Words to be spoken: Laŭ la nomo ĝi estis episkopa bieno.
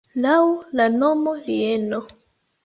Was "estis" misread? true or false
true